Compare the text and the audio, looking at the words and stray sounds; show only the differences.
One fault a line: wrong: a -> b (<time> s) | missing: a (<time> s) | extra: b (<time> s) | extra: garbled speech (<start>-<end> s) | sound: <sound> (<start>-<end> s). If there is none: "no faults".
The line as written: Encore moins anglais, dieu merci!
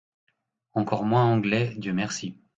no faults